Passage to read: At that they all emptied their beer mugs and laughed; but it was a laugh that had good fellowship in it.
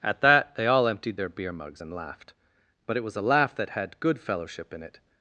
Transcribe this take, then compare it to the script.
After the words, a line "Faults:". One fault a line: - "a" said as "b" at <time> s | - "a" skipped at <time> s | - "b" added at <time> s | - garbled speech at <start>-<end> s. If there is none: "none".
At that they all emptied their beer mugs and laughed; but it was a laugh that had good fellowship in it.
Faults:
none